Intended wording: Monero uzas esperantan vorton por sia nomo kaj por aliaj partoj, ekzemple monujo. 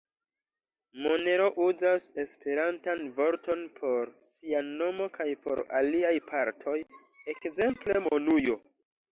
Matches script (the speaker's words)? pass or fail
pass